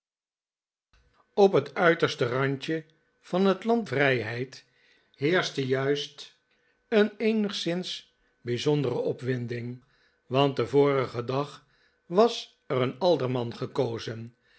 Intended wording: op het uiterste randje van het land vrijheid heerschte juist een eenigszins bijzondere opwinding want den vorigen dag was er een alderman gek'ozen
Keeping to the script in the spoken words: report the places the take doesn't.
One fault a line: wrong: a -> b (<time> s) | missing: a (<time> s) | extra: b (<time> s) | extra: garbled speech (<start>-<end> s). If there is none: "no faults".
no faults